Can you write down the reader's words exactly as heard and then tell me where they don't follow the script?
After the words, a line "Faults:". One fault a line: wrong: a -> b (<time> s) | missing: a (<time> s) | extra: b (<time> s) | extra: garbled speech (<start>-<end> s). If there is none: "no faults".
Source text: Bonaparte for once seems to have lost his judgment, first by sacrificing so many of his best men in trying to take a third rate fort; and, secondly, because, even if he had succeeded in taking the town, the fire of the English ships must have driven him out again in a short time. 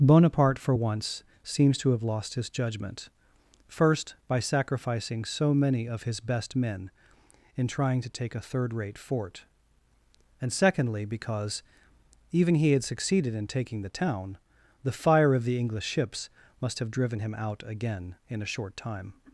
Bonaparte for once seems to have lost his judgment, first by sacrificing so many of his best men in trying to take a third rate fort; and, secondly, because, even he had succeeded in taking the town, the fire of the English ships must have driven him out again in a short time.
Faults:
missing: if (12.5 s)